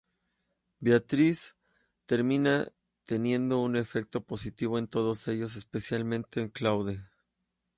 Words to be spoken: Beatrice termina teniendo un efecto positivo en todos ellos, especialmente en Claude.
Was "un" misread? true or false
false